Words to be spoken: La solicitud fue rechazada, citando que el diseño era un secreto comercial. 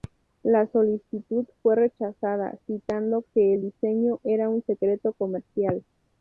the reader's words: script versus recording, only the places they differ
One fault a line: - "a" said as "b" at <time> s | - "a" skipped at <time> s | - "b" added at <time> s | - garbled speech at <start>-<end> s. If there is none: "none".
none